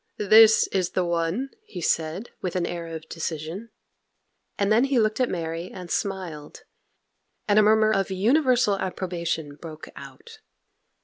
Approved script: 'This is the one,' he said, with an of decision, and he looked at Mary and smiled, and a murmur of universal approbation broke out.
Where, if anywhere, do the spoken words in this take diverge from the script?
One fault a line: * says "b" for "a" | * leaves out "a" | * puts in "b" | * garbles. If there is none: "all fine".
* puts in "air"
* puts in "then"